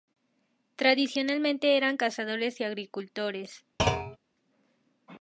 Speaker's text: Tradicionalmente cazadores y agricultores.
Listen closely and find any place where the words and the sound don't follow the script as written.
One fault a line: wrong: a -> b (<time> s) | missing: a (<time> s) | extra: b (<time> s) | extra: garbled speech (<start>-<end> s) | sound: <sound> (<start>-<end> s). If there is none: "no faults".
extra: eran (1.8 s)
sound: thud (3.8-4.2 s)